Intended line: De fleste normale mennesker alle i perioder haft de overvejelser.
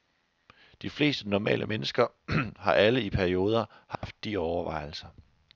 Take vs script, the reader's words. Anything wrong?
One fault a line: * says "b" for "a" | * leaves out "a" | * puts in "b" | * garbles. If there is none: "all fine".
* puts in "har"